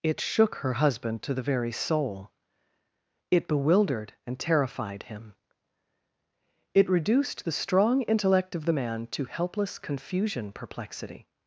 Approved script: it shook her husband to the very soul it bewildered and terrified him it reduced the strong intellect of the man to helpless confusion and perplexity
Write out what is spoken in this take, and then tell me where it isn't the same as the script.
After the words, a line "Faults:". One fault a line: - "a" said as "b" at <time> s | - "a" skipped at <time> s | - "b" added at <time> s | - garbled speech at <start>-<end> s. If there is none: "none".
it shook her husband to the very soul it bewildered and terrified him it reduced the strong intellect of the man to helpless confusion perplexity
Faults:
- "and" skipped at 10.5 s